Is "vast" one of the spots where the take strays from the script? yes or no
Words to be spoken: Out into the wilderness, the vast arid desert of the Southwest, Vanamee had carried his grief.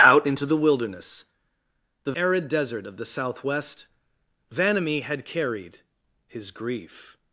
yes